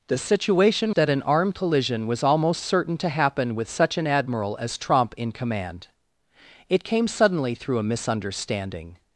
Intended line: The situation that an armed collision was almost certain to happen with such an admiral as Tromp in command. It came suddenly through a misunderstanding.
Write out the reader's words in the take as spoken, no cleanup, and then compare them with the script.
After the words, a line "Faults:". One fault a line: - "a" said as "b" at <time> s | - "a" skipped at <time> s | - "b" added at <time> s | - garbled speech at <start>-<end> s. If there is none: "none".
The situation that an armed collision was almost certain to happen with such an admiral as Tromp in command. It came suddenly through a misunderstanding.
Faults:
none